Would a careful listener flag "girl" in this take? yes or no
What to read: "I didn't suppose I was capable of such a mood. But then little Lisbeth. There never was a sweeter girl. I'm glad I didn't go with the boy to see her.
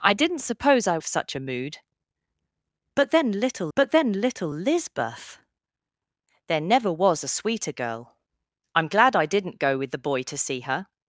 no